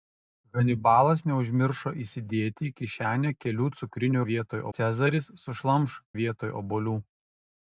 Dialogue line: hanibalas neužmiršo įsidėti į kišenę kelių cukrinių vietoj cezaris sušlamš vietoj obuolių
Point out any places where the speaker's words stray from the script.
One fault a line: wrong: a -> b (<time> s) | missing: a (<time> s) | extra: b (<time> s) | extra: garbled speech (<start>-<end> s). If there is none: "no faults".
no faults